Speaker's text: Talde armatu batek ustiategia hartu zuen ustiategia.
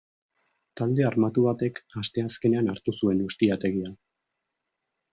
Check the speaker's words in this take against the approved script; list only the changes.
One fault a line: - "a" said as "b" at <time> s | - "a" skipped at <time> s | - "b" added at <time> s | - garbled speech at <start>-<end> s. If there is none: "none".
- "ustiategia" said as "asteazkenean" at 2.0 s